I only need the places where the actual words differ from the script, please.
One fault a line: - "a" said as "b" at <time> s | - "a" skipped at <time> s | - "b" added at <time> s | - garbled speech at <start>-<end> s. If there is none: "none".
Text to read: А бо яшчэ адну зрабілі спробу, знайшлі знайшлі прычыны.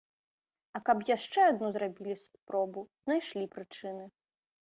- "бо" said as "каб" at 0.9 s
- "знайшлі" skipped at 3.5 s